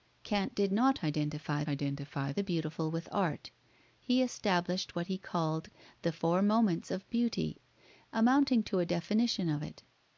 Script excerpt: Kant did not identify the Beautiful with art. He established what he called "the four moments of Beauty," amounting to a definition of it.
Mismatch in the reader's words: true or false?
true